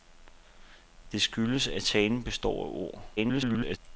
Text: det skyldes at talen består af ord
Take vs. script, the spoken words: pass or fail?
fail